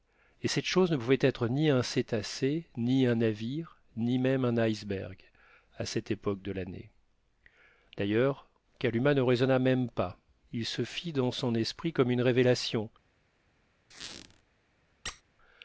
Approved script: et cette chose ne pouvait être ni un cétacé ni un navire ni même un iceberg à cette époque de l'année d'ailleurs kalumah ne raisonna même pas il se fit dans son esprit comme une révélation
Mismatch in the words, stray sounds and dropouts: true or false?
true